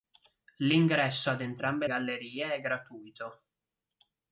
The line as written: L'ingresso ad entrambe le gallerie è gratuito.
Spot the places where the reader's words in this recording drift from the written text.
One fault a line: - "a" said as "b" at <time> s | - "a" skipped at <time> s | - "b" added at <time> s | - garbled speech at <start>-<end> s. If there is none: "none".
- "le" skipped at 1.9 s